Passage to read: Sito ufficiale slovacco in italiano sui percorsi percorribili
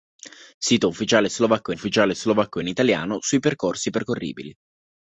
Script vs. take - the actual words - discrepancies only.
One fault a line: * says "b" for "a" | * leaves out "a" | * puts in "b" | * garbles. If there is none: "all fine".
* puts in "ufficiale slovacco"